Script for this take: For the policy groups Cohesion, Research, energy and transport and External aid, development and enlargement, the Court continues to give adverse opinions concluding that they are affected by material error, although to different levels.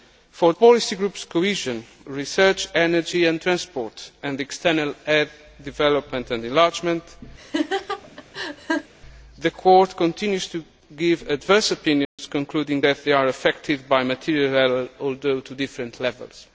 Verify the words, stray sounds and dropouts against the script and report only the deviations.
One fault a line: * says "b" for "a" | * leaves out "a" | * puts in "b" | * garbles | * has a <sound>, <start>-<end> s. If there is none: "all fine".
* leaves out "the"
* has a laugh, 7.4-8.9 s
* has a dropout, 12.0-12.2 s